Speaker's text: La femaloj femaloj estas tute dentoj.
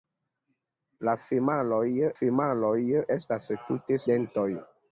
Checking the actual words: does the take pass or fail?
pass